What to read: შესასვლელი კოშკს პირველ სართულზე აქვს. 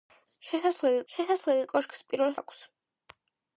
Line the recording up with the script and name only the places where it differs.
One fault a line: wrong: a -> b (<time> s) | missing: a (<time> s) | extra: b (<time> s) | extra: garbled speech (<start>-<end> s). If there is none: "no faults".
extra: შესასვლელი (1.1 s)
missing: სართულზე (2.4 s)